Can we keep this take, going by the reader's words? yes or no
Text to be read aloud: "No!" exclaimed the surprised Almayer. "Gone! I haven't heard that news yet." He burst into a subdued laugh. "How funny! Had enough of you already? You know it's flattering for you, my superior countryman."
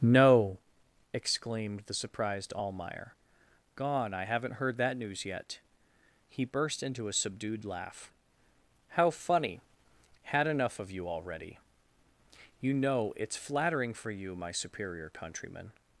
yes